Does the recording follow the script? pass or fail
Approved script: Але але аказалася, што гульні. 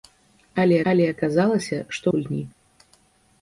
pass